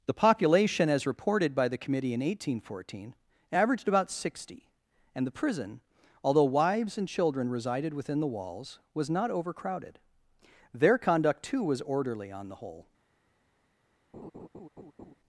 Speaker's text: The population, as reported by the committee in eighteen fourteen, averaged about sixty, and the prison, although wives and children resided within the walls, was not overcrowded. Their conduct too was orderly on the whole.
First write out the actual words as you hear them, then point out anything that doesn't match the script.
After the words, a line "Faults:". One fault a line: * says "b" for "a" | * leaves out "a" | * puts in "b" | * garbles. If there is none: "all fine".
The population, as reported by the committee in eighteen fourteen, averaged about sixty, and the prison, although wives and children resided within the walls, was not overcrowded. Their conduct too was orderly on the whole.
Faults:
all fine